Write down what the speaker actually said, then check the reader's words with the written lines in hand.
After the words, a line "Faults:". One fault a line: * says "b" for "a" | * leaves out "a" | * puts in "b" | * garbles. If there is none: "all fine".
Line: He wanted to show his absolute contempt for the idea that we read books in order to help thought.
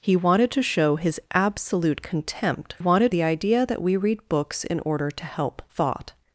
He wanted to show his absolute contempt wanted the idea that we read books in order to help thought.
Faults:
* says "wanted" for "for"